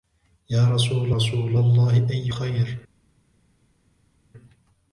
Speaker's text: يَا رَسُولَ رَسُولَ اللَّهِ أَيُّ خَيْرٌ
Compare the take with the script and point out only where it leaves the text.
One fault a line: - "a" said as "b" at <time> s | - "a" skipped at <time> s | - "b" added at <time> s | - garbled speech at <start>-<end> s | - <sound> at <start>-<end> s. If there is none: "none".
none